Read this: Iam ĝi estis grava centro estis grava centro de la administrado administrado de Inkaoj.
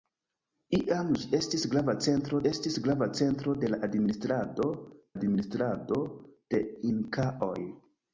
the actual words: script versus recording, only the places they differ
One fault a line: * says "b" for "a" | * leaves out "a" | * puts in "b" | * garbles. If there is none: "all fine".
all fine